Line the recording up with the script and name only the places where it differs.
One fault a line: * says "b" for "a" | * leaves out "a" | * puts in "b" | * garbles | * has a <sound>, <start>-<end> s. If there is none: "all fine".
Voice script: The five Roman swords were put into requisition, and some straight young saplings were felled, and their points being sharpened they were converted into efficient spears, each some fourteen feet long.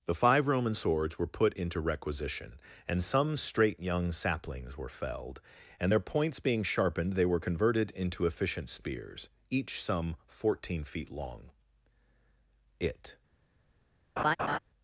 * puts in "It"
* has a laugh, 14.2-14.6 s